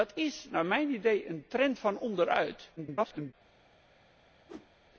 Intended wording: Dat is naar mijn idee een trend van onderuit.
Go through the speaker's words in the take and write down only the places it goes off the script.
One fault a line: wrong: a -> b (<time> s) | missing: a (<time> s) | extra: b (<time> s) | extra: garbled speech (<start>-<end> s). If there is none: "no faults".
extra: garbled speech (2.8-3.3 s)